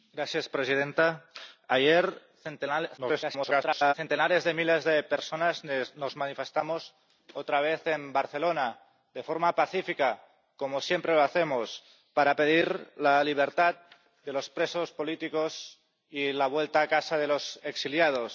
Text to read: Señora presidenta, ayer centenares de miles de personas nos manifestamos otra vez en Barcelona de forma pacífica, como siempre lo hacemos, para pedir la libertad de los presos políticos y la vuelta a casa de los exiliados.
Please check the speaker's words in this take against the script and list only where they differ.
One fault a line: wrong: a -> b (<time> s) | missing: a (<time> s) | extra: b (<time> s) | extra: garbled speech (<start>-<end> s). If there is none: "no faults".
extra: garbled speech (3.0-3.9 s)